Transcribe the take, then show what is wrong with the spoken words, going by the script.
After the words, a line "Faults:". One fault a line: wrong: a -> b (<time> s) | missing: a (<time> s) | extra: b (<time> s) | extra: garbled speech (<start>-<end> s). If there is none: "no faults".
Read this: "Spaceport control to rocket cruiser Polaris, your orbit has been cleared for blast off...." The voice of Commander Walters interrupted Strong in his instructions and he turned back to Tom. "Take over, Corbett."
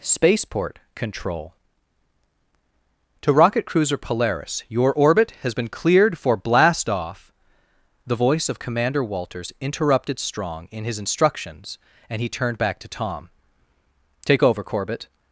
"Spaceport control to rocket cruiser Polaris, your orbit has been cleared for blast off...." The voice of Commander Walters interrupted Strong in his instructions and he turned back to Tom. "Take over, Corbett."
Faults:
no faults